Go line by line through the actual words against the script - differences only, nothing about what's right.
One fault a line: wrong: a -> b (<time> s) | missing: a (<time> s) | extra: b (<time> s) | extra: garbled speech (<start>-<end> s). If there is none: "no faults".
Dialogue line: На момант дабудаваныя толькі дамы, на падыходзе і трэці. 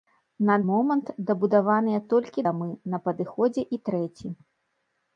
no faults